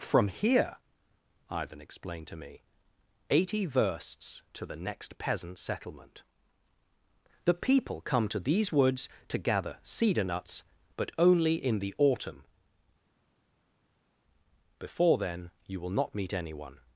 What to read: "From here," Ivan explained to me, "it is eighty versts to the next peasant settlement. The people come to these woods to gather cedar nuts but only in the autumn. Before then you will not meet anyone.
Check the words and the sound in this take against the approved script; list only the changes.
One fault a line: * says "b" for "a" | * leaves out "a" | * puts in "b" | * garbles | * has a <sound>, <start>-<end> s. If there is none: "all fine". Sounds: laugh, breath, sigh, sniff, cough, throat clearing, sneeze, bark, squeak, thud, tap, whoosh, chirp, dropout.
* leaves out "it is"